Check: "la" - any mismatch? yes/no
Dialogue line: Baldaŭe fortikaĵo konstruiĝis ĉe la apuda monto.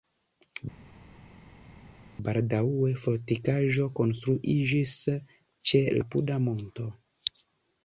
yes